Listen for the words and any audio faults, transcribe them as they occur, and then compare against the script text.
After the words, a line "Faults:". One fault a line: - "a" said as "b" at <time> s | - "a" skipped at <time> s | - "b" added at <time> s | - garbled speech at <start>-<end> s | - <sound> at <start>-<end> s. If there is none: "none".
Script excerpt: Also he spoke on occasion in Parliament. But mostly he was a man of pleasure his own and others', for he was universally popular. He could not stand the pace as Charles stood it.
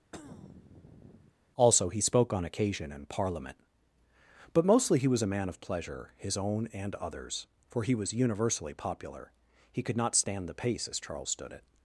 Also he spoke on occasion in Parliament. But mostly he was a man of pleasure his own and others', for he was universally popular. He could not stand the pace as Charles stood it.
Faults:
- throat clearing at 0.1-1.3 s